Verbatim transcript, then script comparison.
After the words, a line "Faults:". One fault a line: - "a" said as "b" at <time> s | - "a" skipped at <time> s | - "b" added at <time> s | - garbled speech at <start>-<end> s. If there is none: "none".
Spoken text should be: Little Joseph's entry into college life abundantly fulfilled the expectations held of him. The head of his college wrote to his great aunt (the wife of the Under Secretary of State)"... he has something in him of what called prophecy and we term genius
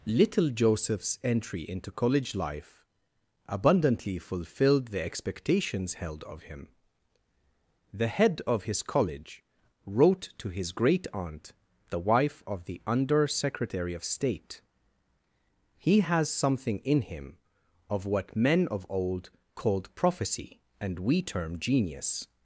Little Joseph's entry into college life abundantly fulfilled the expectations held of him. The head of his college wrote to his great aunt (the wife of the Under Secretary of State)"... he has something in him of what men of Old called prophecy and we term genius
Faults:
- "men of Old" added at 18.4 s